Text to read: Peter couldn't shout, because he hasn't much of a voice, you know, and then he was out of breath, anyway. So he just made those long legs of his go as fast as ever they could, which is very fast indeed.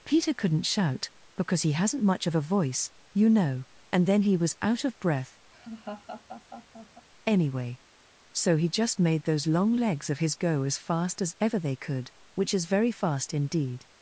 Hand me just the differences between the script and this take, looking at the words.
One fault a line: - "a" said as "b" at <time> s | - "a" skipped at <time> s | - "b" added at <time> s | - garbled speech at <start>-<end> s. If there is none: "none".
none